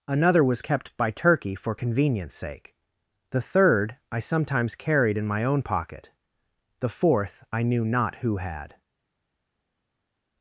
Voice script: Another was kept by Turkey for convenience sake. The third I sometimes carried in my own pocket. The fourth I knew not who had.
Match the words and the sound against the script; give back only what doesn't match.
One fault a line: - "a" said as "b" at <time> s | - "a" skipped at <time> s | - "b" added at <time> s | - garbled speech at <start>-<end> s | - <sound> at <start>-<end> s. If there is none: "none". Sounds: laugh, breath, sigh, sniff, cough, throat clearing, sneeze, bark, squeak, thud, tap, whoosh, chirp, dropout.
none